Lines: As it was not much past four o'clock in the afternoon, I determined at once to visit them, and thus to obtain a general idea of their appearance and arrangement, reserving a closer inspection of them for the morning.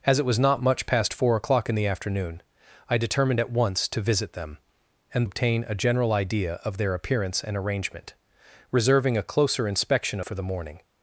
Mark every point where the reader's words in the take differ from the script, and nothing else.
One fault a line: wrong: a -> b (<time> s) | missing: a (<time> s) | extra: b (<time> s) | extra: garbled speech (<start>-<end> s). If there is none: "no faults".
missing: thus to (5.3 s)
missing: of them (10.2 s)